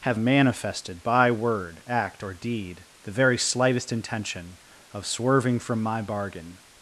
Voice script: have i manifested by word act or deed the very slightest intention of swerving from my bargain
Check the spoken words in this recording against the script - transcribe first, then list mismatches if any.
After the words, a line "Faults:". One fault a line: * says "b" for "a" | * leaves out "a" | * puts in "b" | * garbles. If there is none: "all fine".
have manifested by word act or deed the very slightest intention of swerving from my bargain
Faults:
* leaves out "i"